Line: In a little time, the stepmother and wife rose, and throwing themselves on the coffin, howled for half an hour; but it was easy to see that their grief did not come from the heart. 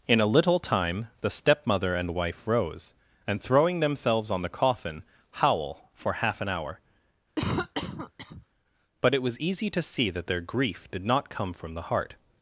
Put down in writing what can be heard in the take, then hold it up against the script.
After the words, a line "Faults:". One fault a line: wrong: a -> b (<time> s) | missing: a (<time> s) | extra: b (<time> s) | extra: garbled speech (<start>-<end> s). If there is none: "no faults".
In a little time, the stepmother and wife rose, and throwing themselves on the coffin, howl for half an hour; but it was easy to see that their grief did not come from the heart.
Faults:
wrong: howled -> howl (5.3 s)